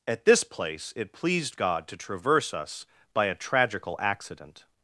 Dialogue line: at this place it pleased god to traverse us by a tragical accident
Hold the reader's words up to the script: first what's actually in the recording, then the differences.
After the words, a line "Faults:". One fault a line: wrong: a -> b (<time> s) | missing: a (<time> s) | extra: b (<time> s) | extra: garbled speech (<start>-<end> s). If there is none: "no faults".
at this place it pleased god to traverse us by a tragical accident
Faults:
no faults